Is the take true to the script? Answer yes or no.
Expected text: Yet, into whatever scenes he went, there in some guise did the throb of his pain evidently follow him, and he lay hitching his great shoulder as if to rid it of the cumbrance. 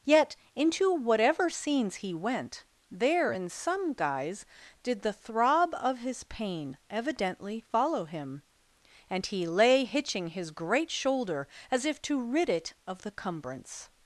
yes